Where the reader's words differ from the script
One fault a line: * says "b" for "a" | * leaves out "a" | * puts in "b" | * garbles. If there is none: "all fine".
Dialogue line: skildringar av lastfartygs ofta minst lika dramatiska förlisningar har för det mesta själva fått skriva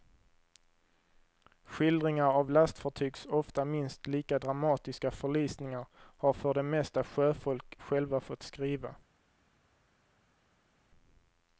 * puts in "sjöfolk"